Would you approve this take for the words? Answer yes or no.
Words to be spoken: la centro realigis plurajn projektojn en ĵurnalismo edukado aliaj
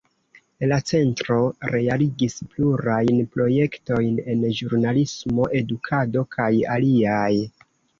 no